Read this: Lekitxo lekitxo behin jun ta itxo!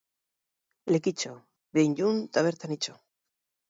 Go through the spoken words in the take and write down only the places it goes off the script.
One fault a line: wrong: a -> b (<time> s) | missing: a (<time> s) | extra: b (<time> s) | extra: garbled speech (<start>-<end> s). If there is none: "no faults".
missing: lekitxo (1.4 s)
extra: bertan (2.5 s)